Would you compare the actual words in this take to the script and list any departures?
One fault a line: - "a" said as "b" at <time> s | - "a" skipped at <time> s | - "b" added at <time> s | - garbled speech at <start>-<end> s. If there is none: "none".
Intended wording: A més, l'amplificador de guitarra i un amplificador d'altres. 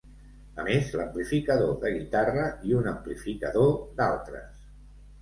none